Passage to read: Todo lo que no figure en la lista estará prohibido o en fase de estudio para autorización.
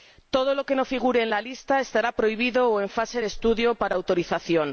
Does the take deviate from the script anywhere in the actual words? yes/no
no